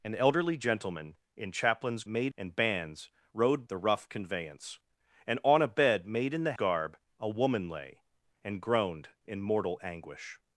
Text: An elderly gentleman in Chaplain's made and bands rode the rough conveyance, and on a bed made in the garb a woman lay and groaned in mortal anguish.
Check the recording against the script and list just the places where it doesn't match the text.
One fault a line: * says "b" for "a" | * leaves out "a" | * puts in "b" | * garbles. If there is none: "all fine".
all fine